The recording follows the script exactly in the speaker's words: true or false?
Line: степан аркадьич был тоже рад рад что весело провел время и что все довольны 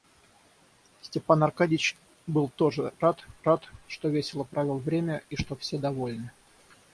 true